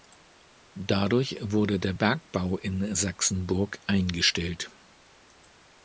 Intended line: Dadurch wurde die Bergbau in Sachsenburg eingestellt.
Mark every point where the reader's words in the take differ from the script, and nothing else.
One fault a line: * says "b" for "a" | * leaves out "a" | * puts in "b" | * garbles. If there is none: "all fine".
* says "der" for "die"